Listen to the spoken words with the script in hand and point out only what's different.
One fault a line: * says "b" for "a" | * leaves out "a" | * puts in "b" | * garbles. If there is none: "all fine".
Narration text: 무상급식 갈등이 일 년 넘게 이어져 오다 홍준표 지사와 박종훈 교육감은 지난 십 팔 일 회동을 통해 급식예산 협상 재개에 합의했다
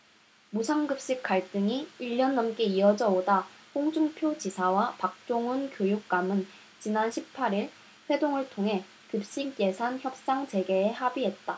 all fine